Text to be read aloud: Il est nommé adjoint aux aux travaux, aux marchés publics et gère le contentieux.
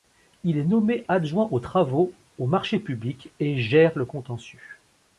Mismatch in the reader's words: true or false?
true